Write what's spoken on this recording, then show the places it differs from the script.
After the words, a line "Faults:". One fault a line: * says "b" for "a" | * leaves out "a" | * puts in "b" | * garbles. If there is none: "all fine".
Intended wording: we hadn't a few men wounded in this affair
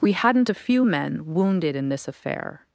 we hadn't a few men wounded in this affair
Faults:
all fine